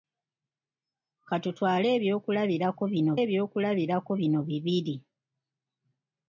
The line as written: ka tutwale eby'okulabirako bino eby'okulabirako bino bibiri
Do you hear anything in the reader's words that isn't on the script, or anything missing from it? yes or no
no